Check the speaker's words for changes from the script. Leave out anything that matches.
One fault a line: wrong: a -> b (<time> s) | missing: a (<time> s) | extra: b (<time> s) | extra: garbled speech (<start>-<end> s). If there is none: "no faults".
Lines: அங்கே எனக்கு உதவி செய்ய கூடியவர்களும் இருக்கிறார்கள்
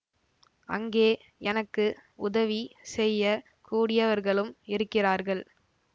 no faults